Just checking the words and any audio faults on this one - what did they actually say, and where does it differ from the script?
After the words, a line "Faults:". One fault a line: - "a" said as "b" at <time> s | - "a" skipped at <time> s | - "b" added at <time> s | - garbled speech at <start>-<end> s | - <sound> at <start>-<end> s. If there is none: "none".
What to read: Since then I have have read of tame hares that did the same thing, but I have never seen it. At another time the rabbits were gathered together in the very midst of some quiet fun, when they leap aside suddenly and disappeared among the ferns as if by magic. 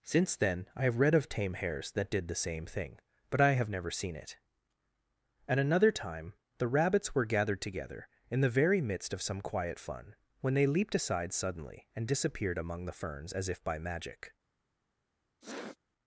Since then I have read of tame hares that did the same thing, but I have never seen it. At another time the rabbits were gathered together in the very midst of some quiet fun, when they leaped aside suddenly and disappeared among the ferns as if by magic.
Faults:
- "have" skipped at 1.0 s
- "leap" said as "leaped" at 10.7 s
- sniff at 15.4-15.8 s